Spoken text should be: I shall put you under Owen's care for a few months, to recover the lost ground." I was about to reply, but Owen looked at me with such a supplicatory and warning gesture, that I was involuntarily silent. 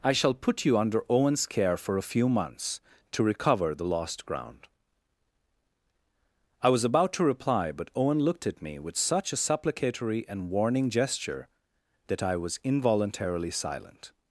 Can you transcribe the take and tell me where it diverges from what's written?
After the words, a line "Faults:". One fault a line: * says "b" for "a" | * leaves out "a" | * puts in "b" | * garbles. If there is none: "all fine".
I shall put you under Owen's care for a few months, to recover the lost ground." I was about to reply, but Owen looked at me with such a supplicatory and warning gesture, that I was involuntarily silent.
Faults:
all fine